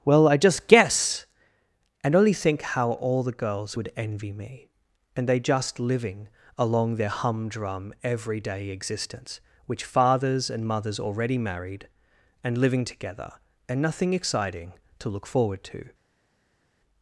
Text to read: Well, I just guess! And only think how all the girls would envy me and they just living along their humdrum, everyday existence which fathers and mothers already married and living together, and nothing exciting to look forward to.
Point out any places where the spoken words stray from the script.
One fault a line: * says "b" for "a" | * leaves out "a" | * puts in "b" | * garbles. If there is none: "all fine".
all fine